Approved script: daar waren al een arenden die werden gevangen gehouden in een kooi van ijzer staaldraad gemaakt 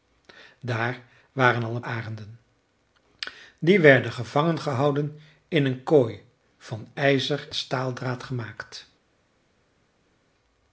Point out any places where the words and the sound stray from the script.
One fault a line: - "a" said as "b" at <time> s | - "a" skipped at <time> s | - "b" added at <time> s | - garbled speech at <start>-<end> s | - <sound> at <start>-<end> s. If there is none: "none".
none